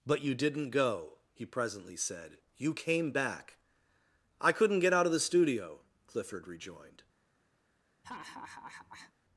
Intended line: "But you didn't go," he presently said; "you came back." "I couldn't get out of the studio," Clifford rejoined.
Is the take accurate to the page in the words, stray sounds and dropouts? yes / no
no